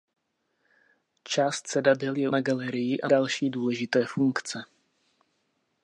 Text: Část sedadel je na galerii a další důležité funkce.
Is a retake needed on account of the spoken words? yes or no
no